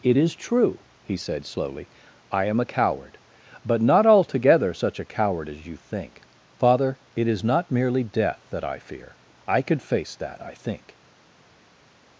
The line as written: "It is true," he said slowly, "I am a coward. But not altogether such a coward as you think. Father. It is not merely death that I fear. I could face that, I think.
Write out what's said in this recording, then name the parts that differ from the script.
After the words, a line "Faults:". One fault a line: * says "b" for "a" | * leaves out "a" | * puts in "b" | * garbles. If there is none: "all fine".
"It is true," he said slowly, "I am a coward. But not altogether such a coward as you think. Father. It is not merely death that I fear. I could face that, I think.
Faults:
all fine